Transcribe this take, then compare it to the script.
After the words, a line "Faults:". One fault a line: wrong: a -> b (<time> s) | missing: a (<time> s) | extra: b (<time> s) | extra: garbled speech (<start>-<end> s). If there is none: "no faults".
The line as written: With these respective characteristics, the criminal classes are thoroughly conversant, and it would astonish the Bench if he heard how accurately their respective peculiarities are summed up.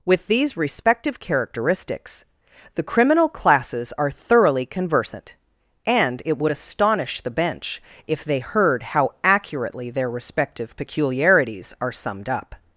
With these respective characteristics, the criminal classes are thoroughly conversant, and it would astonish the Bench if they heard how accurately their respective peculiarities are summed up.
Faults:
wrong: he -> they (8.2 s)